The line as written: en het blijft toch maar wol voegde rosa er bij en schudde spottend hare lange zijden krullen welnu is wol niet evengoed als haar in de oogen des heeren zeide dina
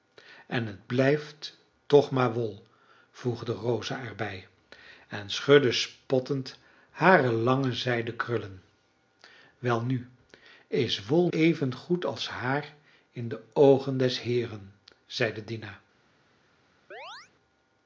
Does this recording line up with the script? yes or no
no